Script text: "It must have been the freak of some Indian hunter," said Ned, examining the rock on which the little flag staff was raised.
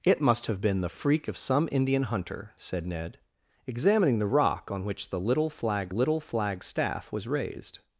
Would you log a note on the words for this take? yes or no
yes